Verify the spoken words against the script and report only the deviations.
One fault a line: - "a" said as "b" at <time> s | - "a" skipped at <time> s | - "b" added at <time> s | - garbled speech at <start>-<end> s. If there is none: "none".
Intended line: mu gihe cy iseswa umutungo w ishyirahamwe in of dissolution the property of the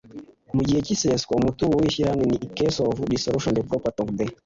- "case" added at 2.6 s